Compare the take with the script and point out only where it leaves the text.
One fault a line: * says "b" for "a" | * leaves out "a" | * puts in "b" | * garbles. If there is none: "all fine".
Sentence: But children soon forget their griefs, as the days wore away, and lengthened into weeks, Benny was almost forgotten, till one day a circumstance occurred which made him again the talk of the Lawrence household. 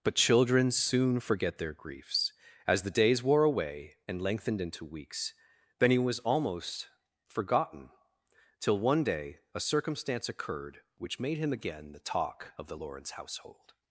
all fine